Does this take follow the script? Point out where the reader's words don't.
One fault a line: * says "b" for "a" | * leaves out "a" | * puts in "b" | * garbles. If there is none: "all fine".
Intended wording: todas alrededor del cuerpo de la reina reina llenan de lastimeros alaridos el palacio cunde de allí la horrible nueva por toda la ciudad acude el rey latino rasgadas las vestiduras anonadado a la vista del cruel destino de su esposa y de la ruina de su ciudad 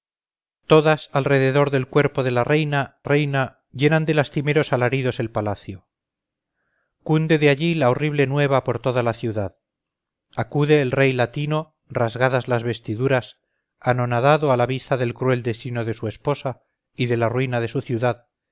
all fine